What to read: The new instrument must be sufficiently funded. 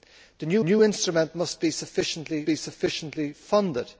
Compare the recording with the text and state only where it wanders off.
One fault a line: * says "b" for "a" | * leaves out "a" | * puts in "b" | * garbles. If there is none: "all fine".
* puts in "new"
* puts in "be sufficiently"